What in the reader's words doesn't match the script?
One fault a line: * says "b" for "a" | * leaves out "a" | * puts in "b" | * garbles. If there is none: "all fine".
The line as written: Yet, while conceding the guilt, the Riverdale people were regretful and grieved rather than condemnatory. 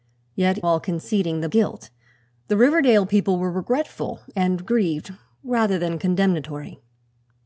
all fine